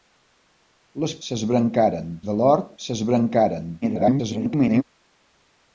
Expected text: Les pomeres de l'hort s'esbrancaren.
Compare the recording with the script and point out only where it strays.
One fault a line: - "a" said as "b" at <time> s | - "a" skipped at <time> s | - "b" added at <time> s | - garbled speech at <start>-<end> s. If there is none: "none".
- "pomeres" said as "s'esbrancaren" at 1.3 s
- garbled speech at 3.8-4.8 s